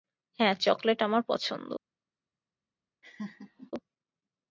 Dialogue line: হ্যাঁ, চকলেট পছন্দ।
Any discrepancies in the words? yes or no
yes